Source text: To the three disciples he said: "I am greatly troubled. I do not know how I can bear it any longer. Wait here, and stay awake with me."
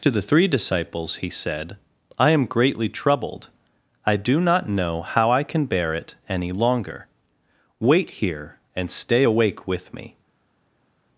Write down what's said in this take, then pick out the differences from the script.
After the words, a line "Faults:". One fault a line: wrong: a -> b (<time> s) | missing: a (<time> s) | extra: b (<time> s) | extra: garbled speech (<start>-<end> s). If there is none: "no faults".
To the three disciples he said: "I am greatly troubled. I do not know how I can bear it any longer. Wait here, and stay awake with me."
Faults:
no faults